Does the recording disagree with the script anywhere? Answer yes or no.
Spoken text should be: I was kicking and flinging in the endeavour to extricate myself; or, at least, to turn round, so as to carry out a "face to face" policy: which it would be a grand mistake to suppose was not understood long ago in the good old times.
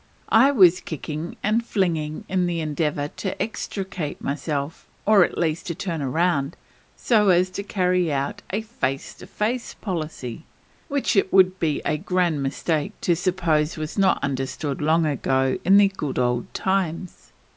no